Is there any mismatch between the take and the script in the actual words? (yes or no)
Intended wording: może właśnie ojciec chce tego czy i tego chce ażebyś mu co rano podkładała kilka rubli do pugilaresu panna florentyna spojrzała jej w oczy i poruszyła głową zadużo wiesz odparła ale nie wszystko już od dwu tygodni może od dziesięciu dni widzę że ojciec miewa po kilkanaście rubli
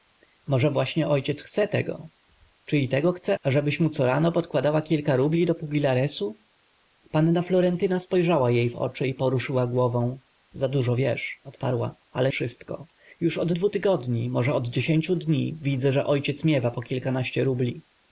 yes